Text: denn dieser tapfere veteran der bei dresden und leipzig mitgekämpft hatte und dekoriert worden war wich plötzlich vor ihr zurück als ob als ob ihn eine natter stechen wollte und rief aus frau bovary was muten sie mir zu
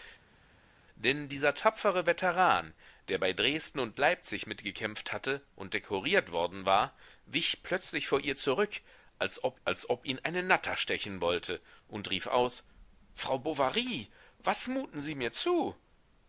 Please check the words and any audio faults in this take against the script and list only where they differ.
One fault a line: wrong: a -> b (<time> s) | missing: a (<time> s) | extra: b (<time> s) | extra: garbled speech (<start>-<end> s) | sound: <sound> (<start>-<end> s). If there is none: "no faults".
no faults